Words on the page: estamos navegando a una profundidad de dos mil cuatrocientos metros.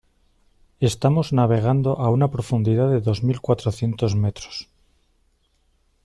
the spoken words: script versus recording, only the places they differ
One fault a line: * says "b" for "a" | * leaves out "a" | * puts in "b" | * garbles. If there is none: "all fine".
all fine